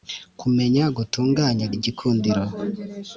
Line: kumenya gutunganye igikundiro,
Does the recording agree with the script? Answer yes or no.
yes